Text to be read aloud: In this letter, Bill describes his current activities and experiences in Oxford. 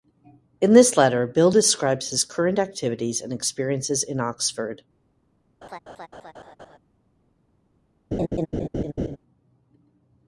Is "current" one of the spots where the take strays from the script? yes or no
no